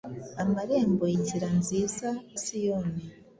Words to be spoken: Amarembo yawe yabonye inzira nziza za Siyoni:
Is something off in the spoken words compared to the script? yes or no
yes